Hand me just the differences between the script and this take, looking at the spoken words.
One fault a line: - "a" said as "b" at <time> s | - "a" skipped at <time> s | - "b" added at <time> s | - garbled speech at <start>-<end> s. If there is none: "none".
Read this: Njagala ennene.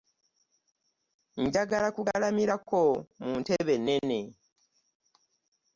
- "kugalamirako mu ntebe" added at 1.9 s